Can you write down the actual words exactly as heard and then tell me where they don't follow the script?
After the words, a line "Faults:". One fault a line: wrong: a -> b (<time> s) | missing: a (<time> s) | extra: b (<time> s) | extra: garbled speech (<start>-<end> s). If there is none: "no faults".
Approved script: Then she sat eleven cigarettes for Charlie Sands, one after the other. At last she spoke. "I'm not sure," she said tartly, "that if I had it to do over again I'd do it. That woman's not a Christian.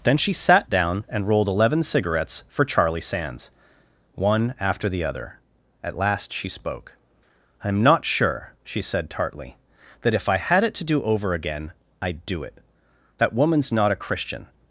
Then she sat down and rolled eleven cigarettes for Charlie Sands, one after the other. At last she spoke. "I'm not sure," she said tartly, "that if I had it to do over again I'd do it. That woman's not a Christian.
Faults:
extra: down and rolled (0.7 s)